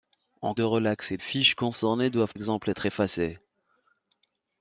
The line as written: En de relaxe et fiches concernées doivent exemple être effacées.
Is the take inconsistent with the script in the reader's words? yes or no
no